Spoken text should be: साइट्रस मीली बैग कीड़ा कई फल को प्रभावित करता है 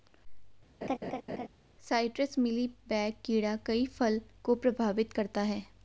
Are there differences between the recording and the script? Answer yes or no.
no